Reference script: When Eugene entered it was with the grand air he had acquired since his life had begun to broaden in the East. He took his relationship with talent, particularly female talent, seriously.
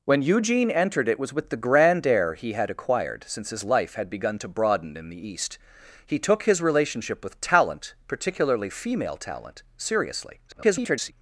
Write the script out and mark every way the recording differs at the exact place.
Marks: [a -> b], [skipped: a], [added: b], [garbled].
When Eugene entered it was with the grand air he had acquired since his life had begun to broaden in the East. He took his relationship with talent, particularly female talent, seriously. [garbled]